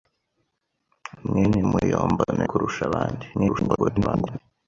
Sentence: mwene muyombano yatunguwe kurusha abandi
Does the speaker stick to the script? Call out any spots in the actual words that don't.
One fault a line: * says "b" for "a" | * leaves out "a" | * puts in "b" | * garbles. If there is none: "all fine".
* leaves out "yatunguwe"
* garbles